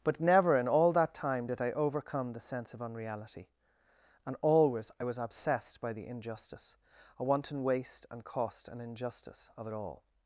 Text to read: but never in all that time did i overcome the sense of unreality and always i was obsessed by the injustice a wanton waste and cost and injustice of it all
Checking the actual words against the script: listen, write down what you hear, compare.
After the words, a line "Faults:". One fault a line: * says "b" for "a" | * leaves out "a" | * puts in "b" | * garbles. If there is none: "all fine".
but never in all that time did i overcome the sense of unreality and always i was obsessed by the injustice a wanton waste and cost and injustice of it all
Faults:
all fine